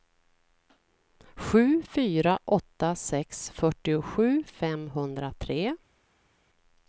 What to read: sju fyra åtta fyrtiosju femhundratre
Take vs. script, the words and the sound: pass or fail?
fail